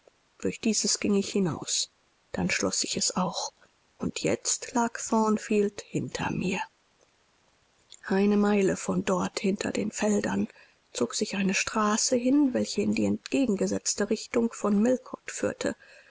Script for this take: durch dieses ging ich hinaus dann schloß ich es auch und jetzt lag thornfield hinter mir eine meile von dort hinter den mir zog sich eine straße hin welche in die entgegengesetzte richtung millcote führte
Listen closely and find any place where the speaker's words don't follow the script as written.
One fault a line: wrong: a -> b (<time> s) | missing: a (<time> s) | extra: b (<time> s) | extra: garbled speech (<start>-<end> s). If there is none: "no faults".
wrong: mir -> feldern (9.9 s)
extra: von (14.5 s)